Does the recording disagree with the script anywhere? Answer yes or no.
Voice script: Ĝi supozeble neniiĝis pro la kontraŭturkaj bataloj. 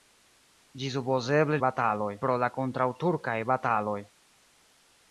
yes